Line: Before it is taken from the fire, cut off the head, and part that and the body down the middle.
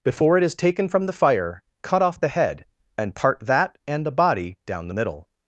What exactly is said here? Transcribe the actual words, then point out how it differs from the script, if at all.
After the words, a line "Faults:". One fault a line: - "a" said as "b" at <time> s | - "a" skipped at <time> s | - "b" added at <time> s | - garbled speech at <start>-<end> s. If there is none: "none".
Before it is taken from the fire, cut off the head, and part that and the body down the middle.
Faults:
none